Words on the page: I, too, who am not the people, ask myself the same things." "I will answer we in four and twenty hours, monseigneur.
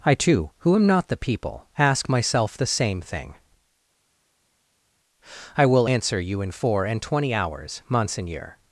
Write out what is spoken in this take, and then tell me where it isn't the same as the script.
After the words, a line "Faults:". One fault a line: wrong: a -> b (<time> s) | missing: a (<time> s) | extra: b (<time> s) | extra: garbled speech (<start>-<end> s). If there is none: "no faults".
I, too, who am not the people, ask myself the same thing." "I will answer you in four and twenty hours, monseigneur.
Faults:
wrong: things -> thing (3.0 s)
wrong: we -> you (6.2 s)